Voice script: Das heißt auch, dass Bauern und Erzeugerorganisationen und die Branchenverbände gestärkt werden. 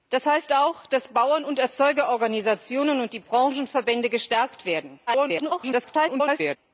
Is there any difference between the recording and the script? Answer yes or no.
yes